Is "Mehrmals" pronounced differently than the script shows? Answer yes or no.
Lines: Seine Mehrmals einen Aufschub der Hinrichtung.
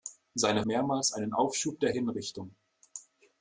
no